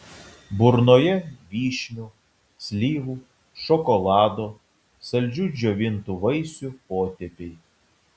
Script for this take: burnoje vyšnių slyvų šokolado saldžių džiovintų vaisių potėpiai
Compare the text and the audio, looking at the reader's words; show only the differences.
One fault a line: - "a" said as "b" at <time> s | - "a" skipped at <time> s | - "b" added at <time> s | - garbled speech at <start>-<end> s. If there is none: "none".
none